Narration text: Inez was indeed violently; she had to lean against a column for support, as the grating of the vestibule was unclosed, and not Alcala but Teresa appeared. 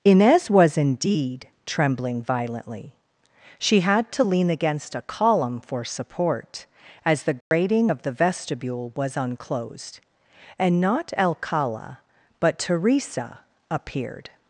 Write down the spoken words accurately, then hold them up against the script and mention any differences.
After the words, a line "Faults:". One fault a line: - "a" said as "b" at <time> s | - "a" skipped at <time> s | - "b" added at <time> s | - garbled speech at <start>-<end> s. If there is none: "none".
Inez was indeed trembling violently; she had to lean against a column for support, as the grating of the vestibule was unclosed, and not Alcala but Teresa appeared.
Faults:
- "trembling" added at 1.7 s